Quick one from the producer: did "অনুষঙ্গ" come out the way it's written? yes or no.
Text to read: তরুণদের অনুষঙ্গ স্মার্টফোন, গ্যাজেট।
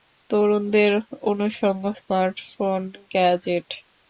yes